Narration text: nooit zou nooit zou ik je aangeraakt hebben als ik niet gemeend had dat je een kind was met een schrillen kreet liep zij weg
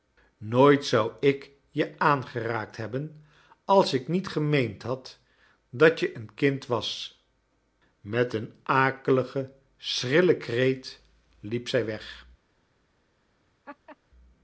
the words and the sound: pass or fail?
fail